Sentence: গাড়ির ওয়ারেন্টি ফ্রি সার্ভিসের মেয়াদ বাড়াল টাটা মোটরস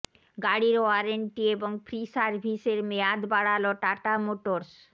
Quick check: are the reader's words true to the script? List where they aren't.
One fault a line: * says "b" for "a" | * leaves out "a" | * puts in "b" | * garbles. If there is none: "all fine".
* puts in "এবং"